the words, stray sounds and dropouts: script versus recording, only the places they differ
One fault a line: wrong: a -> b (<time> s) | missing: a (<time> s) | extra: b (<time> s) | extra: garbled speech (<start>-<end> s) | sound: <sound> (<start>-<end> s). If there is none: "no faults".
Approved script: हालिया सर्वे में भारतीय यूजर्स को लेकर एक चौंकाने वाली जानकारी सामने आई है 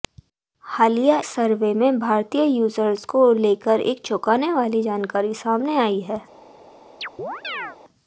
sound: chirp (7.0-7.8 s)